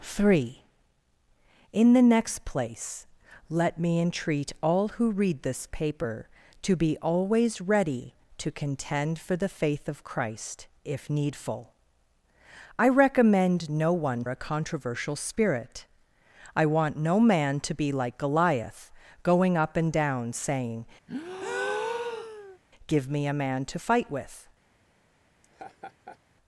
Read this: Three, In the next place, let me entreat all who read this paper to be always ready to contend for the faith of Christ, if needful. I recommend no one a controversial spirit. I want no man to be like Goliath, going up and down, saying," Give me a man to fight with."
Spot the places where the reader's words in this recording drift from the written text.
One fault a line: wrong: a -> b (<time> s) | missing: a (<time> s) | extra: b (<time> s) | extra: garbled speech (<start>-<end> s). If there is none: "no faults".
no faults